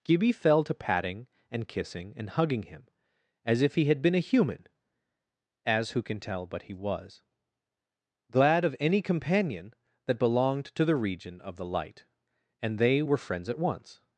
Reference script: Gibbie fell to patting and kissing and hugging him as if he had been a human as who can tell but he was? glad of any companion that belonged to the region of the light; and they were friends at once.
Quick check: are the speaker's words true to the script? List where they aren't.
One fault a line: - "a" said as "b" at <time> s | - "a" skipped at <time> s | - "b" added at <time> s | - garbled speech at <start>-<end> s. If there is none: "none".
none